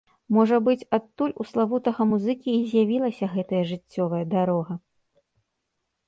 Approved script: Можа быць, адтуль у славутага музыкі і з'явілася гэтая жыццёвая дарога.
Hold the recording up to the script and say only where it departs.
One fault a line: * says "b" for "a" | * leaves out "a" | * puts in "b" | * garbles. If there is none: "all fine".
all fine